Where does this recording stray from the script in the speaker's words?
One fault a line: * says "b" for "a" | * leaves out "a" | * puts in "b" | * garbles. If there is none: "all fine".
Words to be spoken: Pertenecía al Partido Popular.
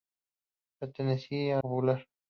* leaves out "al Partido"